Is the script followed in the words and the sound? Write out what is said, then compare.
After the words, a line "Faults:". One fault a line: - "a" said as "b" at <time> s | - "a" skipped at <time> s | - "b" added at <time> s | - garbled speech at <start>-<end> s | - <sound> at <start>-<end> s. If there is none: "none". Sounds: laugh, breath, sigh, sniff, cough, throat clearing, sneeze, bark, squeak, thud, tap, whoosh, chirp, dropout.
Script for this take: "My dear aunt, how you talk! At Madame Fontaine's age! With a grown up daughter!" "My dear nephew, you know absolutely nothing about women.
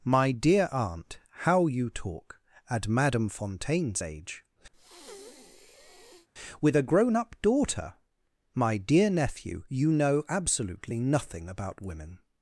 "My dear aunt, how you talk! At Madame Fontaine's age! With a grown up daughter!" "My dear nephew, you know absolutely nothing about women.
Faults:
- breath at 4.7-6.3 s